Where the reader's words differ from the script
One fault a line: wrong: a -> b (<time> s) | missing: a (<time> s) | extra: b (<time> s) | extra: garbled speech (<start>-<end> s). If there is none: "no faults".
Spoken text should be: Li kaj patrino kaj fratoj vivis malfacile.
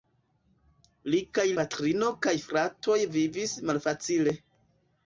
no faults